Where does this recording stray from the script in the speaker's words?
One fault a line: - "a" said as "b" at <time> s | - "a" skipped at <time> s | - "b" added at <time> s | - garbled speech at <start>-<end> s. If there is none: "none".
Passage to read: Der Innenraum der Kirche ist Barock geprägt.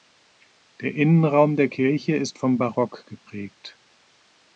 - "vom" added at 2.4 s